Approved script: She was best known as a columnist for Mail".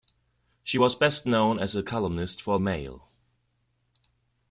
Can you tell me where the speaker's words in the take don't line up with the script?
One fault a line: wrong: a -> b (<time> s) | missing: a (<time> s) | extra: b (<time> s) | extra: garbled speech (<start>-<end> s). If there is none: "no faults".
no faults